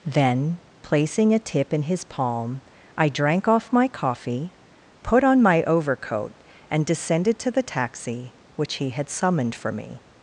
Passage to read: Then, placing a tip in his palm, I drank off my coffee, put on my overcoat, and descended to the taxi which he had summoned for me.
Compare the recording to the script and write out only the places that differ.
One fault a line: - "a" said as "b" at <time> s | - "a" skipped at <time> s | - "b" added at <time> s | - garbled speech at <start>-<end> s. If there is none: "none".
none